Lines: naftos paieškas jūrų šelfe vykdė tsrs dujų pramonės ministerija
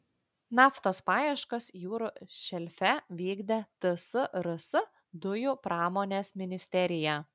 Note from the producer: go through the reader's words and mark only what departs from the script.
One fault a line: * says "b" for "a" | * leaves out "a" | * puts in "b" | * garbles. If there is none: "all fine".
all fine